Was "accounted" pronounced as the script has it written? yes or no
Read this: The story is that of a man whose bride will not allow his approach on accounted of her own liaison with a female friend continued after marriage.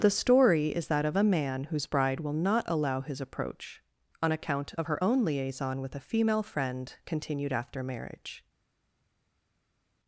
no